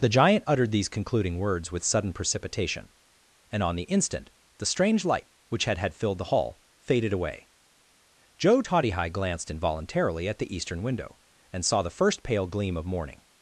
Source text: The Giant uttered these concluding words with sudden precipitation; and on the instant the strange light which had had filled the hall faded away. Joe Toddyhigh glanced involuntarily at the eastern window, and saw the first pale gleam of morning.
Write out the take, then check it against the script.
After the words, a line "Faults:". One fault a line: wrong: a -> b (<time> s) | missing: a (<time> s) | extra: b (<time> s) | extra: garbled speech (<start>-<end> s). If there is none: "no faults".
The Giant uttered these concluding words with sudden precipitation; and on the instant the strange light which had had filled the hall faded away. Joe Toddyhigh glanced involuntarily at the eastern window, and saw the first pale gleam of morning.
Faults:
no faults